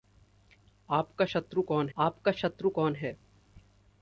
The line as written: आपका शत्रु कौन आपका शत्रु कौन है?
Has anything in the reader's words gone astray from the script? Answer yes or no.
no